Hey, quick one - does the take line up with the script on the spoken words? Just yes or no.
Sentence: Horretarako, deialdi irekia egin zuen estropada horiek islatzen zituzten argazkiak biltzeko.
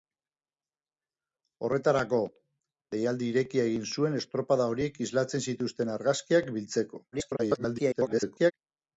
no